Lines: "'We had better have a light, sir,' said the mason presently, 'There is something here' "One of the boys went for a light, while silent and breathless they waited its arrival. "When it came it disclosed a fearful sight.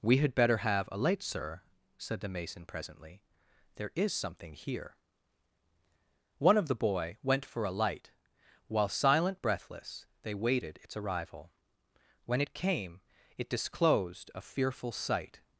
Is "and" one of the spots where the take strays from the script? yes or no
yes